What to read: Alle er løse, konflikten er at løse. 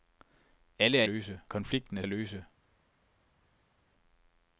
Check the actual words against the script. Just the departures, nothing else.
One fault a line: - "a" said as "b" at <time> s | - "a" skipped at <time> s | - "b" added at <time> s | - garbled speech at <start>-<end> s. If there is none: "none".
none